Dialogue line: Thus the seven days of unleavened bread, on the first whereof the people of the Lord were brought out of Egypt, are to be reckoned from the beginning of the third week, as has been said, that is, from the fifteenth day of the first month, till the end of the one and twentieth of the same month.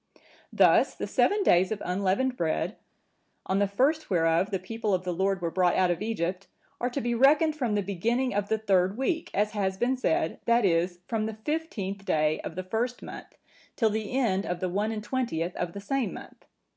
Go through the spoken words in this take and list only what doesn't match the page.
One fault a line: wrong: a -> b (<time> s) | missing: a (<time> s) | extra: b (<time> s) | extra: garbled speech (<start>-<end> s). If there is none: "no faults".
no faults